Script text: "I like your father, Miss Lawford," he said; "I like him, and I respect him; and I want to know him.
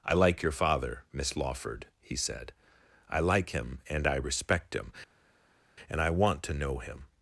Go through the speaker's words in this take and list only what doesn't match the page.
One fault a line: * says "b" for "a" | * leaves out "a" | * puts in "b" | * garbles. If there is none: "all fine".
all fine